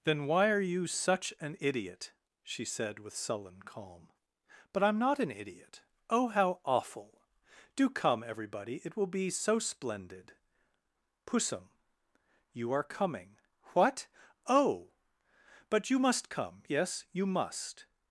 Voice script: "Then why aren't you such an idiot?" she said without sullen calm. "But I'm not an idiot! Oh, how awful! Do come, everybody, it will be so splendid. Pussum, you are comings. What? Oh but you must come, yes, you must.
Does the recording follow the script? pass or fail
fail